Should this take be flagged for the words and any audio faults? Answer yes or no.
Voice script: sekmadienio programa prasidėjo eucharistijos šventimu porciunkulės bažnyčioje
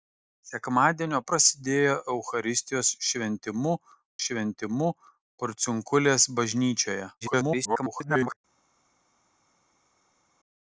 yes